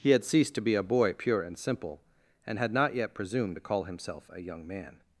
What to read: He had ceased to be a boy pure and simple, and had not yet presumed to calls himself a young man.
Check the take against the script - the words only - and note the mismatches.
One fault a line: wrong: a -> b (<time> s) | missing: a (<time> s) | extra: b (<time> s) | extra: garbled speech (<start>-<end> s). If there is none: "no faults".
wrong: calls -> call (3.6 s)